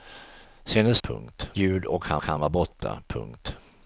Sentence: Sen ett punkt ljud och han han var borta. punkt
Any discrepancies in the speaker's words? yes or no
no